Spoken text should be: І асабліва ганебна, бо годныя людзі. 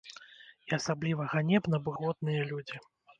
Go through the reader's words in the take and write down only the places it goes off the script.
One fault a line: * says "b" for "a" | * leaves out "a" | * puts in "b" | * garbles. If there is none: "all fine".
all fine